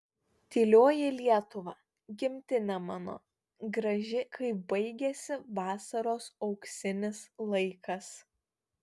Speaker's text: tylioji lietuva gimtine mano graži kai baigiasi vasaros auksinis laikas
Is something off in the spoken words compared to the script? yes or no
no